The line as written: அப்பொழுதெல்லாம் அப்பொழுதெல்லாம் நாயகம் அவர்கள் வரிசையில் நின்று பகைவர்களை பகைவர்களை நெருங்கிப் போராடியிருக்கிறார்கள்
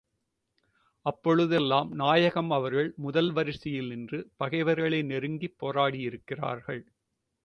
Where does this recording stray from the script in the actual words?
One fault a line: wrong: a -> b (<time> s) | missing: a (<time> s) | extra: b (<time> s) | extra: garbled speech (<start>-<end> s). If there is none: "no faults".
missing: அப்பொழுதெல்லாம் (1.9 s)
extra: முதல் (3.0 s)
missing: பகைவர்களை (5.0 s)